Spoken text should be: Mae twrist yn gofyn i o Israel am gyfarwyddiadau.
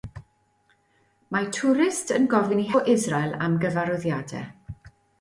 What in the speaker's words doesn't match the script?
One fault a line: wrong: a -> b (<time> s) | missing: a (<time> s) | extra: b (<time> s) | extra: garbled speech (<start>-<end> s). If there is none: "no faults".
no faults